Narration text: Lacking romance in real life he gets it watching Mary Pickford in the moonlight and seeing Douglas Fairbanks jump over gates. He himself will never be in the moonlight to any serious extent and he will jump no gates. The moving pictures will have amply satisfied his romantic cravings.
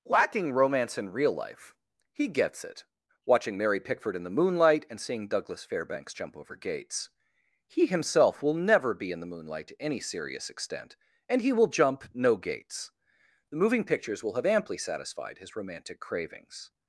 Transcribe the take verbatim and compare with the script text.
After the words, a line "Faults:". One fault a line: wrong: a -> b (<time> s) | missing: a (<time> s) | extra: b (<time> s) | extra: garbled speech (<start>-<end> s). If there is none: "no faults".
Lacking romance in real life he gets it watching Mary Pickford in the moonlight and seeing Douglas Fairbanks jump over gates. He himself will never be in the moonlight to any serious extent and he will jump no gates. The moving pictures will have amply satisfied his romantic cravings.
Faults:
no faults